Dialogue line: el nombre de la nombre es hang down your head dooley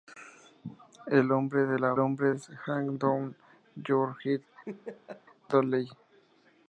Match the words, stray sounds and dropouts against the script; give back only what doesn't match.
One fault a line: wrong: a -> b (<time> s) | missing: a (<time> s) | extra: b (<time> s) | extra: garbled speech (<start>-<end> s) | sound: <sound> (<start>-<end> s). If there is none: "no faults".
sound: laugh (4.7-5.2 s)